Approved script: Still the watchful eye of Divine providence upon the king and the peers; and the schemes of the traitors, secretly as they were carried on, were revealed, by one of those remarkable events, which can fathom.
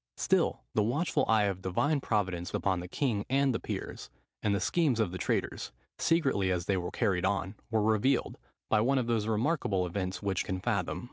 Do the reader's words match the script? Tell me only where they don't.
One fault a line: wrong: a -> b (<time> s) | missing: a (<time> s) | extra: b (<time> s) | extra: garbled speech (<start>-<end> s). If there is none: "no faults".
no faults